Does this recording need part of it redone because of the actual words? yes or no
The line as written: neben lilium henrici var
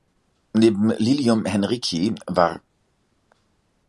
no